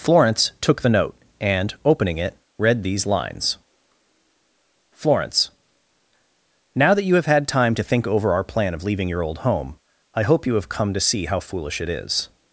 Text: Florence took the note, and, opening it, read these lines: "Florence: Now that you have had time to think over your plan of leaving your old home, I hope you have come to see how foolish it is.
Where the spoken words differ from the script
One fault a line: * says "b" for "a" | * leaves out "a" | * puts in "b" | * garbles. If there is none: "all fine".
* says "our" for "your"